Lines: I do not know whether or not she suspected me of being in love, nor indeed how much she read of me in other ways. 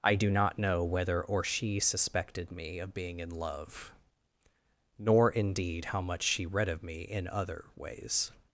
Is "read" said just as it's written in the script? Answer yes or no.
yes